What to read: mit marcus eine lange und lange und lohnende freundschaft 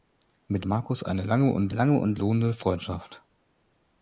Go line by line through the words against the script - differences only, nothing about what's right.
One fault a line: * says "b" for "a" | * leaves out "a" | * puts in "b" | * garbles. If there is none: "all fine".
all fine